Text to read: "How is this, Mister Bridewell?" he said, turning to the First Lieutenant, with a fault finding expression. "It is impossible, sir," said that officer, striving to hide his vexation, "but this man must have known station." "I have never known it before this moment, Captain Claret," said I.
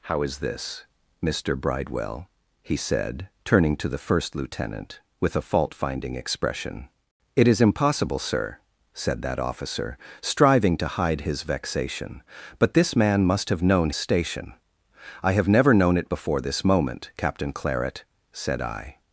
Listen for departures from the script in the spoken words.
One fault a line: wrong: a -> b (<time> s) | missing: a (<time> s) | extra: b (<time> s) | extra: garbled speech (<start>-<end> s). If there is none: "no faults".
no faults